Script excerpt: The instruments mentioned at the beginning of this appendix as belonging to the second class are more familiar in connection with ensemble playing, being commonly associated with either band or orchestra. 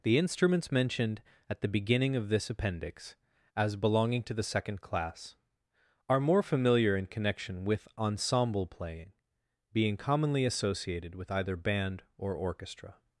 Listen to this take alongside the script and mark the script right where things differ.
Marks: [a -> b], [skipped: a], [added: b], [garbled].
The instruments mentioned at the beginning of this appendix as belonging to the second class are more familiar in connection with ensemble playing, being commonly associated with either band or orchestra.